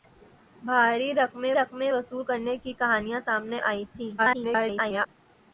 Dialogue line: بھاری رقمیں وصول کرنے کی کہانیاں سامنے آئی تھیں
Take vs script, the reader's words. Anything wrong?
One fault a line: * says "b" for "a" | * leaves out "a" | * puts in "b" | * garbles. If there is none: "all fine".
* puts in "رقمیں"
* garbles